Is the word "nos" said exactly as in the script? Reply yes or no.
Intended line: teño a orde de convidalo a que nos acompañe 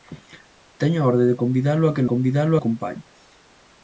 no